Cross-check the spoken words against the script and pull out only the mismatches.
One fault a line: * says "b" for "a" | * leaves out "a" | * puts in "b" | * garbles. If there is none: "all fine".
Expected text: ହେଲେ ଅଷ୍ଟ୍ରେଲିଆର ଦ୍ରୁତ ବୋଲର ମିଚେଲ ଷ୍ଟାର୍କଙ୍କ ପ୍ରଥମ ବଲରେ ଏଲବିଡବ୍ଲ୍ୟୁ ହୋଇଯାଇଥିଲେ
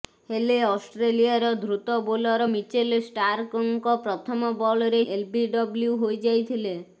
all fine